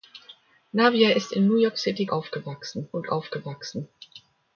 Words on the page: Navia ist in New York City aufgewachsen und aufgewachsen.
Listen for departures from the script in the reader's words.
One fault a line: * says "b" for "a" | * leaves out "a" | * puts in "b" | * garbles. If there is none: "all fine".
all fine